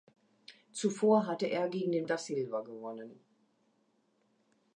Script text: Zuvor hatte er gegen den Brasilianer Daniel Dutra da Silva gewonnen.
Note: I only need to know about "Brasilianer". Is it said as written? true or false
false